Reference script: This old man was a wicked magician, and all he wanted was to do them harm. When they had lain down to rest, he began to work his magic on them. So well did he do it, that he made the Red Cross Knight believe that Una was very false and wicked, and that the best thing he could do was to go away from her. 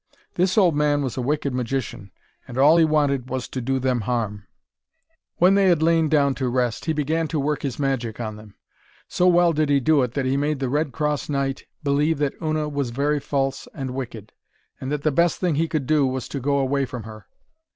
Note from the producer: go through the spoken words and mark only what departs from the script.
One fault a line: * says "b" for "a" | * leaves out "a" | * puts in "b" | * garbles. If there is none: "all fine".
all fine